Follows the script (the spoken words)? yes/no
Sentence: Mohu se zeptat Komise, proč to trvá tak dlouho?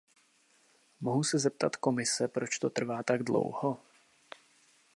yes